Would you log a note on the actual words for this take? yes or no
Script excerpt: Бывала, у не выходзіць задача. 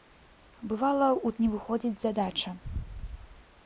no